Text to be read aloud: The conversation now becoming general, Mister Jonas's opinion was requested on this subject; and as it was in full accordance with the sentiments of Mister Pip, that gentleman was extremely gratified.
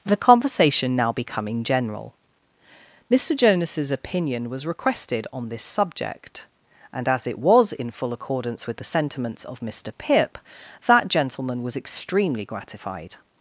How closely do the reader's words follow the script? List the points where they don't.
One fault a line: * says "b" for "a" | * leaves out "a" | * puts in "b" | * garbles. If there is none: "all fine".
all fine